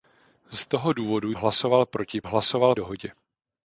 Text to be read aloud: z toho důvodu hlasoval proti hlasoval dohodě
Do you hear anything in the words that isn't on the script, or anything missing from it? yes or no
no